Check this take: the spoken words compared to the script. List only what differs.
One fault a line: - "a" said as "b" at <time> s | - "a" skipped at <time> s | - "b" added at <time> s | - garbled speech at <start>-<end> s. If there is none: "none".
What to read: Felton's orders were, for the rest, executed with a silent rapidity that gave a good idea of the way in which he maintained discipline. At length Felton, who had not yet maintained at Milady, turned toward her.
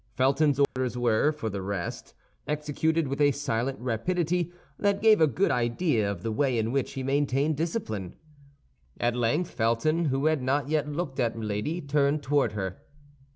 - "maintained" said as "looked" at 10.9 s